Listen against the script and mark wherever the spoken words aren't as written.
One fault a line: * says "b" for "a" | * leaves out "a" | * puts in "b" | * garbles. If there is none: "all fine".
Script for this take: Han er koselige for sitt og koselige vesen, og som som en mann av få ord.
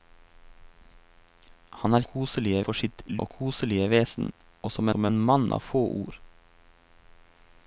all fine